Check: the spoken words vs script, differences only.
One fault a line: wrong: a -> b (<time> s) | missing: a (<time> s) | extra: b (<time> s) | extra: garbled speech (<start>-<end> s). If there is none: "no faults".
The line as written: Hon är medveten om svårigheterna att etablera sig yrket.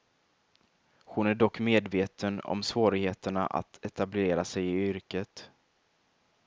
extra: dock (1.4 s)
extra: i (4.6 s)